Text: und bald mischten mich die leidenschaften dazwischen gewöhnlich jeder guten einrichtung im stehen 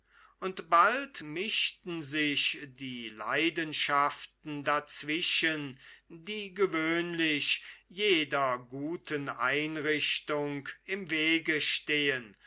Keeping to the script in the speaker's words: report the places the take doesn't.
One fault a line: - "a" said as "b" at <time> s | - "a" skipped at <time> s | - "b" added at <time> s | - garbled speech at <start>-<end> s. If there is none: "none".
- "mich" said as "sich" at 2.0 s
- "die" added at 6.1 s
- "wege" added at 11.1 s